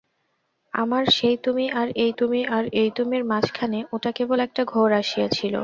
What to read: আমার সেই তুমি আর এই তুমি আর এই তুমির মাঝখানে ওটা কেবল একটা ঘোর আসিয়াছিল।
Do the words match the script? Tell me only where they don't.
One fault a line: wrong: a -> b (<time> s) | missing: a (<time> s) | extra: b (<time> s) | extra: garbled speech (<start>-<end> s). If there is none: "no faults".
no faults